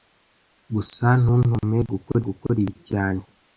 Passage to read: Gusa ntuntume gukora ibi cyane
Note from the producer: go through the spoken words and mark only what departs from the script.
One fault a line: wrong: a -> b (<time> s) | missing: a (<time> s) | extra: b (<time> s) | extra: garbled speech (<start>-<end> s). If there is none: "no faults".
extra: gukora (2.3 s)